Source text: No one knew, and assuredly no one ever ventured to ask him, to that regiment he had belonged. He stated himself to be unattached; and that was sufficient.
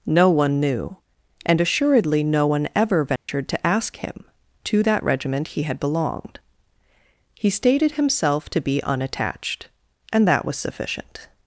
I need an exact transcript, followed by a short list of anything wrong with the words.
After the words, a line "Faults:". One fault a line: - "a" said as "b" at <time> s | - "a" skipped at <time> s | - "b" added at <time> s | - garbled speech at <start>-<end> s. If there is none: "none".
No one knew, and assuredly no one ever ventured to ask him, to that regiment he had belonged. He stated himself to be unattached; and that was sufficient.
Faults:
none